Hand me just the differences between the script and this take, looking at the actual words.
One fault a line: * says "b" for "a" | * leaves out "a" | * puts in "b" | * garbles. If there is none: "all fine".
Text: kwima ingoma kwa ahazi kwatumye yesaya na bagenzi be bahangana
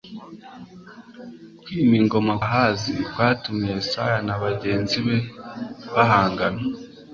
* leaves out "kwa"